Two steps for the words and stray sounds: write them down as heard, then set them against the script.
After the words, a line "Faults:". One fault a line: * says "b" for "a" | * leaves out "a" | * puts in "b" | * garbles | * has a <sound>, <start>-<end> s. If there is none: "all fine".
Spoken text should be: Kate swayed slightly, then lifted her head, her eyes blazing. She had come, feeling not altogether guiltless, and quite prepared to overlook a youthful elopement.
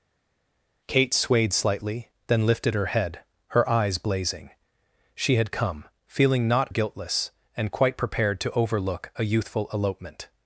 Kate swayed slightly, then lifted her head, her eyes blazing. She had come, feeling not guiltless, and quite prepared to overlook a youthful elopement.
Faults:
* leaves out "altogether"